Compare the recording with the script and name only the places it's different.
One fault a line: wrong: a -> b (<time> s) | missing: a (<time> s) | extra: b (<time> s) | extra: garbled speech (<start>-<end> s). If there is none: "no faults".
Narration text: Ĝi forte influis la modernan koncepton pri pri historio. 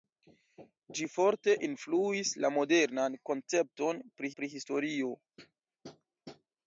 no faults